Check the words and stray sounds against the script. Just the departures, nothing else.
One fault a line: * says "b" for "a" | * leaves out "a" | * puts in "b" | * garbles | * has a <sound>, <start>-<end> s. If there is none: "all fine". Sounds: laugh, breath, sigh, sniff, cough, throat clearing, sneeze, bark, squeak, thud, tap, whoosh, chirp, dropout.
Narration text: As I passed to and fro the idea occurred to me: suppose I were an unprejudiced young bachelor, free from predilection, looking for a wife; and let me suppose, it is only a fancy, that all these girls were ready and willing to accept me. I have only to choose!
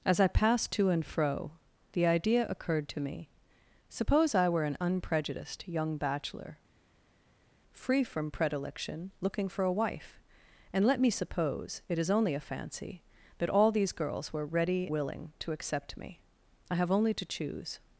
* leaves out "and"